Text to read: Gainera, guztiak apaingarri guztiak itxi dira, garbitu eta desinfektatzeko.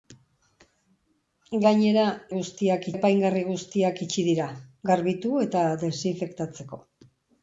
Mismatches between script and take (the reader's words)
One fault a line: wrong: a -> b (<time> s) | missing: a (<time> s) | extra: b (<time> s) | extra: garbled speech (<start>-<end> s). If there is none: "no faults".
no faults